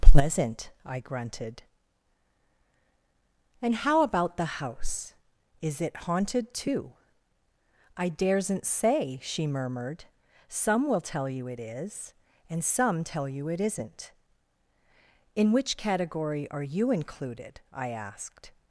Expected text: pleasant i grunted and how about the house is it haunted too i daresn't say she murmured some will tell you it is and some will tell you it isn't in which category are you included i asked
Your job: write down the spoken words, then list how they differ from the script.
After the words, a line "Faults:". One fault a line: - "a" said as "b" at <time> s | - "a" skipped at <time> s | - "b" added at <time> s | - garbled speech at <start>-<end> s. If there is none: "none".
pleasant i grunted and how about the house is it haunted too i daresn't say she murmured some will tell you it is and some tell you it isn't in which category are you included i asked
Faults:
- "will" skipped at 13.0 s